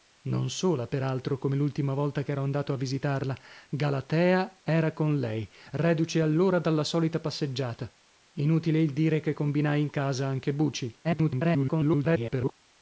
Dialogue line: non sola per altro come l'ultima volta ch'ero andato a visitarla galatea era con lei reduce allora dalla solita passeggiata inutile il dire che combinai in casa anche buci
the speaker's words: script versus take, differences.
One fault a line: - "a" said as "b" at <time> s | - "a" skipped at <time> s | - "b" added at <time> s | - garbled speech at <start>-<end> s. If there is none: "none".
- garbled speech at 11.0-12.5 s